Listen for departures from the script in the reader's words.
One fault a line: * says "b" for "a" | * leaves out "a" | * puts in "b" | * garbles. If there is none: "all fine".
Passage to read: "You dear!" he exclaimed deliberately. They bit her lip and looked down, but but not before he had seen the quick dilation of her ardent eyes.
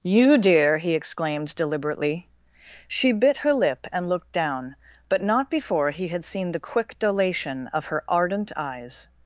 * says "She" for "They"
* leaves out "but"